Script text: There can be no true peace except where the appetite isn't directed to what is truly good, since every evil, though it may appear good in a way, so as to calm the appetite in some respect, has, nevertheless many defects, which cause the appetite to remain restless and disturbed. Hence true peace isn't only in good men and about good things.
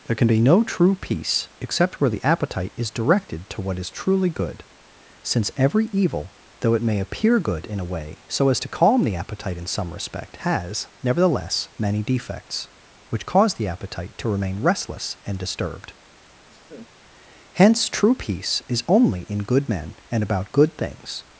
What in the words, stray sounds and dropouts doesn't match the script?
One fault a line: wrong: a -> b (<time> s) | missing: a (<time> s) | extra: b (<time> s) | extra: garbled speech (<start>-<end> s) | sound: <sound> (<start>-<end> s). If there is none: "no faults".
wrong: isn't -> is (2.8 s)
sound: laugh (16.5-16.9 s)
wrong: isn't -> is (18.7 s)